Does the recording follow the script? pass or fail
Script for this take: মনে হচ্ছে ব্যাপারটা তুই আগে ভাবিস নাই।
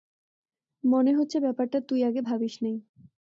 pass